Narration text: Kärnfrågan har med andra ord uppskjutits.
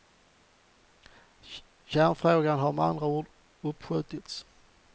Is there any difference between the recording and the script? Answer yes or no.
no